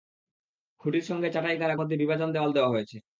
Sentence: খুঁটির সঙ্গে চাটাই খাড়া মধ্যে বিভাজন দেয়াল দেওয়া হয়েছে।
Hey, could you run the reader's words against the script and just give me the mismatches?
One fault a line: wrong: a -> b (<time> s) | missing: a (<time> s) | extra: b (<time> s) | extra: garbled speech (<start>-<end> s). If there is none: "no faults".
no faults